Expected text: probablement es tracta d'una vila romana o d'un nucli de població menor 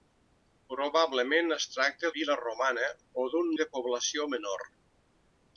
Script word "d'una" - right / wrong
wrong